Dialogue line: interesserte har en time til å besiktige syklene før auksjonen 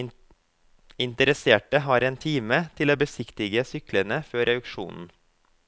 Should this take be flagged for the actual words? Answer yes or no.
no